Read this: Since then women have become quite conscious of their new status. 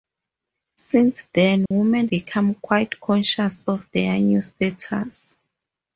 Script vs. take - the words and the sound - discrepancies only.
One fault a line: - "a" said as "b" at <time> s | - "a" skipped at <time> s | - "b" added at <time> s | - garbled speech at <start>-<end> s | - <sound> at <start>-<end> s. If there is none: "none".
- dropout at 1.7-1.7 s
- "have" skipped at 2.1 s